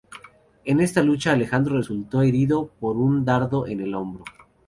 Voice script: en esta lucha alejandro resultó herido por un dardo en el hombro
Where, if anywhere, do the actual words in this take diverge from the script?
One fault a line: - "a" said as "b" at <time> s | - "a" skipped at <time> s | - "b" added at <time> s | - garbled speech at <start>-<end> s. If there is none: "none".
none